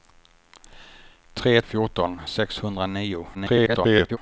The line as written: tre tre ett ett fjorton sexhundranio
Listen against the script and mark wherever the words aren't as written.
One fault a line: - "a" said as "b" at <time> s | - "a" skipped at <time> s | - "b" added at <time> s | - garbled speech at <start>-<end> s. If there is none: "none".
- "tre ett ett" skipped at 1.6 s
- garbled speech at 3.3-4.2 s